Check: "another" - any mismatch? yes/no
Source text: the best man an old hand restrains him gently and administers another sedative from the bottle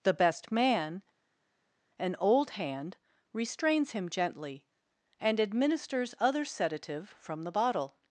yes